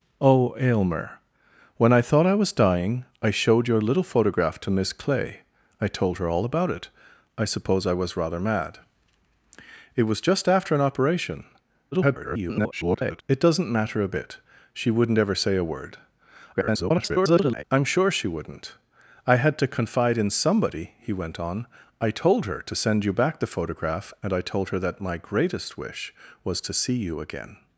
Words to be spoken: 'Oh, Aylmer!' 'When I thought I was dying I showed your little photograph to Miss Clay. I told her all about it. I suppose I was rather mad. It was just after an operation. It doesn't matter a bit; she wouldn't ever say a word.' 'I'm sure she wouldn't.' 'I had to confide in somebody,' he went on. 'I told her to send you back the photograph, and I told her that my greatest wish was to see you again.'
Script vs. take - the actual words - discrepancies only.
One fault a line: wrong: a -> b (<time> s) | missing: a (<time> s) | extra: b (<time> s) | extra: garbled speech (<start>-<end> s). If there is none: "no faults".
extra: garbled speech (11.9-13.2 s)
extra: garbled speech (16.5-17.6 s)